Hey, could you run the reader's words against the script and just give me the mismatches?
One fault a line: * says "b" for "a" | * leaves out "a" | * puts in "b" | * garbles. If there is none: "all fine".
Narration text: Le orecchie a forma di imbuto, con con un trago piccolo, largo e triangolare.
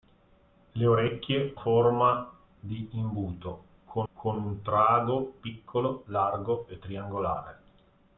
all fine